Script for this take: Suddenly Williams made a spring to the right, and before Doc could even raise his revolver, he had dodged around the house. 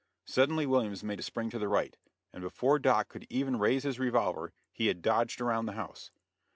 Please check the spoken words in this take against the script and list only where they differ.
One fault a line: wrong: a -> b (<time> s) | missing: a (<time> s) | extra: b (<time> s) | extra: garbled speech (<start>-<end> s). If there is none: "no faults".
no faults